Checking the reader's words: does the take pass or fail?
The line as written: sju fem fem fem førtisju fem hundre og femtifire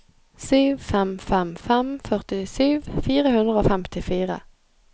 fail